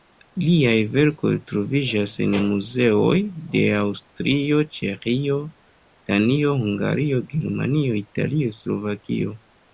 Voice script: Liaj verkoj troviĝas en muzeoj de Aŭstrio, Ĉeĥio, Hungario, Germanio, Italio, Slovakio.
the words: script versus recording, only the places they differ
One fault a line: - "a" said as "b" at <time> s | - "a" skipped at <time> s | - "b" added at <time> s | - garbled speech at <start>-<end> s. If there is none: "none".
- "Danio" added at 6.1 s